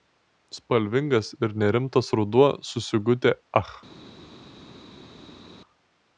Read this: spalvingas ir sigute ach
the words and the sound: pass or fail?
fail